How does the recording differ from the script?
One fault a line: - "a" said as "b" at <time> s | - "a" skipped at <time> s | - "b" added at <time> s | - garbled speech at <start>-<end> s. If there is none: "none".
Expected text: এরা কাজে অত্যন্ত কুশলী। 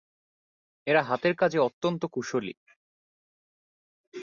- "হাতের" added at 1.0 s